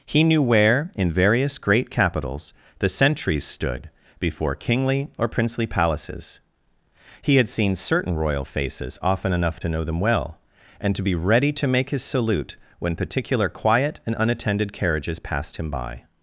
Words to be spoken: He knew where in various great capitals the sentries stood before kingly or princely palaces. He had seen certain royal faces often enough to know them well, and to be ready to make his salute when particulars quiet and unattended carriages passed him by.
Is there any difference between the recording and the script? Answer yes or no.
yes